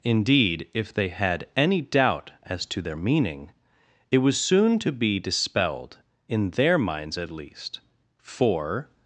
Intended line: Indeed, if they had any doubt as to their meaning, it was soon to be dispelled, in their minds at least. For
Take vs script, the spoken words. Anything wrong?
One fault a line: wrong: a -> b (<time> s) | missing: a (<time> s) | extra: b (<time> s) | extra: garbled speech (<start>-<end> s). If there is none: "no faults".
no faults